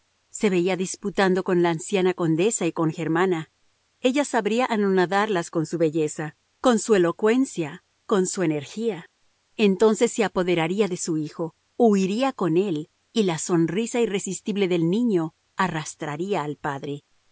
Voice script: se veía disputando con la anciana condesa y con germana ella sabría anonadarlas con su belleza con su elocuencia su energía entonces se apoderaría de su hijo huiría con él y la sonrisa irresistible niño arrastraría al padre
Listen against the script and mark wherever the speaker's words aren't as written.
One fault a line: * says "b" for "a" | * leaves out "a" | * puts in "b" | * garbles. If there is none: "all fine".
* puts in "con"
* puts in "del"